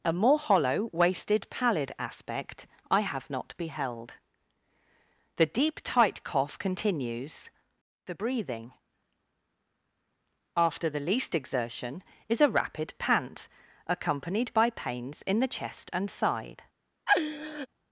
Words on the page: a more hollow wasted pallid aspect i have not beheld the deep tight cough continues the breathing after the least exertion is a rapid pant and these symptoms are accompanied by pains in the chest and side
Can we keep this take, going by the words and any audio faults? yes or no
no